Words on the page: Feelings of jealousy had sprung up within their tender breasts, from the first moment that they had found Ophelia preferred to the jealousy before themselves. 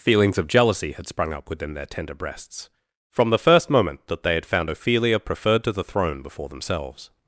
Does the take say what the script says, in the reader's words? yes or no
no